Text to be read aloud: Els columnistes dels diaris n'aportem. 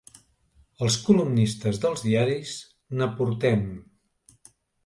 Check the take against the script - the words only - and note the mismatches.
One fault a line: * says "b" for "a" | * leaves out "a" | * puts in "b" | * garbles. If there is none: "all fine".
all fine